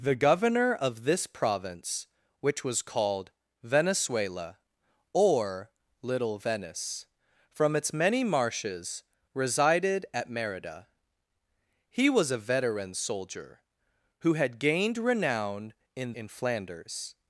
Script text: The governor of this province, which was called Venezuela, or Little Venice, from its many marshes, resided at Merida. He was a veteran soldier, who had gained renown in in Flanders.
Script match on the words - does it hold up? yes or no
yes